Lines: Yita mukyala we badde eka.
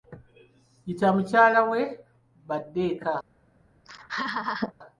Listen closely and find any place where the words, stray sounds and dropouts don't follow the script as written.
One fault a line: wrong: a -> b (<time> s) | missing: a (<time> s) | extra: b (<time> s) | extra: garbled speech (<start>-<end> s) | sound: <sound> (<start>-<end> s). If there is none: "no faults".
sound: laugh (3.8-4.7 s)